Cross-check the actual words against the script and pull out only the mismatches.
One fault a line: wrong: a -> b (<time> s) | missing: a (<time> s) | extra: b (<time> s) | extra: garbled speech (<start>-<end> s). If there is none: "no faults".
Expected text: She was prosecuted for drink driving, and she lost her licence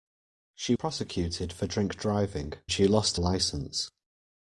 missing: was (0.8 s)
missing: and (2.5 s)
missing: her (3.2 s)